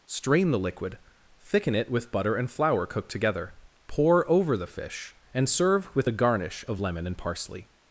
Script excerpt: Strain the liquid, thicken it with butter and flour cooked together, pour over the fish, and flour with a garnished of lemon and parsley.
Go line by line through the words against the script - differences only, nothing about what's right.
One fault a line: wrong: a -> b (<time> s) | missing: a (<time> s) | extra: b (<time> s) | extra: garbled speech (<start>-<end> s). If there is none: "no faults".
wrong: flour -> serve (5.5 s)
wrong: garnished -> garnish (6.1 s)